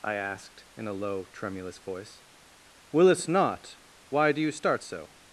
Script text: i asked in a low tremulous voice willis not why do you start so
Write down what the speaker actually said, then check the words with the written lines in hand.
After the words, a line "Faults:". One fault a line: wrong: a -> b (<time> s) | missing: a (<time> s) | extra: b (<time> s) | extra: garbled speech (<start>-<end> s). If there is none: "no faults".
i asked in a low tremulous voice willis not why do you start so
Faults:
no faults